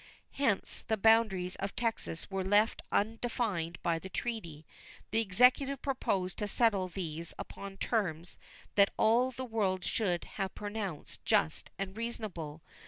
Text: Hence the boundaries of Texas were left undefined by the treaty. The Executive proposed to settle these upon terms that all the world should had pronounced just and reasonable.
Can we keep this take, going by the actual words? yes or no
no